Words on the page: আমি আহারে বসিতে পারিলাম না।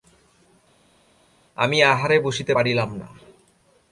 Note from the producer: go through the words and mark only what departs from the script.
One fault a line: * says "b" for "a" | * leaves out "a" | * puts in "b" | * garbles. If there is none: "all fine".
all fine